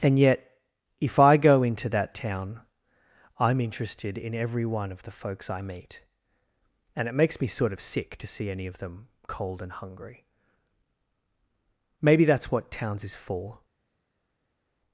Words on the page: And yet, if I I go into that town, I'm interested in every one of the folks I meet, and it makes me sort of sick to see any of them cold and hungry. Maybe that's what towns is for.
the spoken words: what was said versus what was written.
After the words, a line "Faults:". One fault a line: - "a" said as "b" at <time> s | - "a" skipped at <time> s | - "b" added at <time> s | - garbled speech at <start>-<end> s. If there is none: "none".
And yet, if I go into that town, I'm interested in every one of the folks I meet, and it makes me sort of sick to see any of them cold and hungry. Maybe that's what towns is for.
Faults:
- "I" skipped at 1.4 s